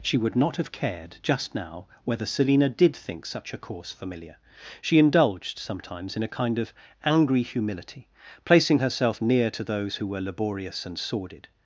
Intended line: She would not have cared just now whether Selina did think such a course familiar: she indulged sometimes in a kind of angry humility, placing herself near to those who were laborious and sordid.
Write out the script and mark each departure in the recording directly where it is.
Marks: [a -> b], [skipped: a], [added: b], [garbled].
She would not have cared just now whether Selina did think such a course familiar: she indulged sometimes in a kind of angry humility, placing herself near to those who were laborious and sordid.